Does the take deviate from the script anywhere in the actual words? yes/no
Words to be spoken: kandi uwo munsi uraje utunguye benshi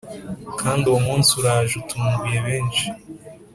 no